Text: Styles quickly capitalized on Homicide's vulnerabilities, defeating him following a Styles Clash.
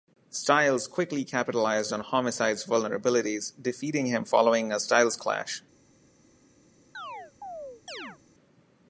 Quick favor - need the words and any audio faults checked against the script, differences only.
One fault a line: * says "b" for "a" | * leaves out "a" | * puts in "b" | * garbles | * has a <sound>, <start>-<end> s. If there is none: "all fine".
* has a chirp, 6.9-8.2 s